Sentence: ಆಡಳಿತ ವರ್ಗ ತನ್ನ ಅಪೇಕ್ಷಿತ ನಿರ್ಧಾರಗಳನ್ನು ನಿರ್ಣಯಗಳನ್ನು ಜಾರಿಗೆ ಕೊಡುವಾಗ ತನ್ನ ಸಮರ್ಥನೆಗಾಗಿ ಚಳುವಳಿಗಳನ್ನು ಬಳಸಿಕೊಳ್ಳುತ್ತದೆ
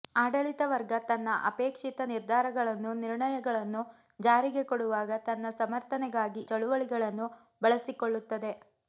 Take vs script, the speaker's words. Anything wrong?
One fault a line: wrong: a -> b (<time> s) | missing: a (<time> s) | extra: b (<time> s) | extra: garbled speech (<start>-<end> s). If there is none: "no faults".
no faults